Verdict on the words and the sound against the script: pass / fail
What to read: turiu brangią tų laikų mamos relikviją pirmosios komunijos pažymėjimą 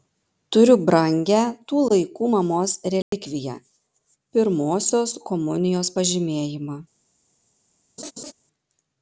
fail